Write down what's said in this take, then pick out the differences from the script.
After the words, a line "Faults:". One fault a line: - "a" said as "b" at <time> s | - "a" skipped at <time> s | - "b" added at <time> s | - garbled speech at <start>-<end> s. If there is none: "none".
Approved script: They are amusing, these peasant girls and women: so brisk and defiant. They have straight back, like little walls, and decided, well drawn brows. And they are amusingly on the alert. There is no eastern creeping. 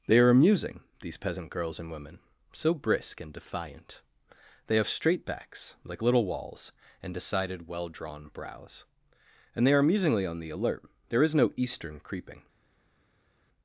They are amusing, these peasant girls and women: so brisk and defiant. They have straight backs, like little walls, and decided, well drawn brows. And they are amusingly on the alert. There is no eastern creeping.
Faults:
- "back" said as "backs" at 5.3 s